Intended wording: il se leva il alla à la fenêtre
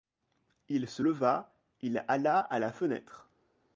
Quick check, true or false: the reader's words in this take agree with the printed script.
true